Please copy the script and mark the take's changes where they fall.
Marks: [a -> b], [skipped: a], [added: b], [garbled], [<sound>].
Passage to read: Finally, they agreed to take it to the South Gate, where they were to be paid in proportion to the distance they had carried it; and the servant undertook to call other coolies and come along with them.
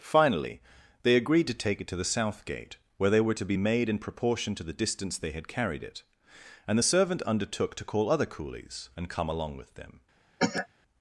Finally, they agreed to take it to the South Gate, where they were to be [paid -> made] in proportion to the distance they had carried it; and the servant undertook to call other coolies and come along with them. [cough]